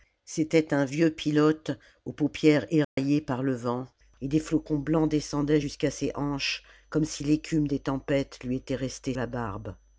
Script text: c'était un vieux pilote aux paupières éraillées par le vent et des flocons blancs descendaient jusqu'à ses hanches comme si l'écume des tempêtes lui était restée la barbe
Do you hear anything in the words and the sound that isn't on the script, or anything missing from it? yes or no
yes